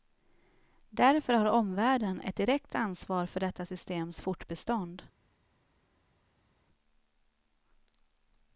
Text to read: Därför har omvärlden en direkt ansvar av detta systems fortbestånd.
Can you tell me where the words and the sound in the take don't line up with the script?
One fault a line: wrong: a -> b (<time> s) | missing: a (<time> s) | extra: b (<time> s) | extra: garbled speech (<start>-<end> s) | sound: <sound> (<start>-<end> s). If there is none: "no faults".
wrong: en -> ett (2.2 s)
wrong: av -> för (3.2 s)